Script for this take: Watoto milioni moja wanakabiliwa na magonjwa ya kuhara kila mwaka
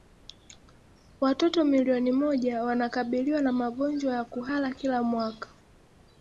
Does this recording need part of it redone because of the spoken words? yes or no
no